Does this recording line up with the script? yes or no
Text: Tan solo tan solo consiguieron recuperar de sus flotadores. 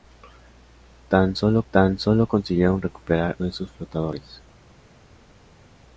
yes